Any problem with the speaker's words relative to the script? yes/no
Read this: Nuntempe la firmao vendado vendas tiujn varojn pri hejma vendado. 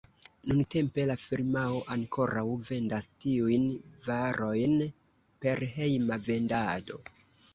yes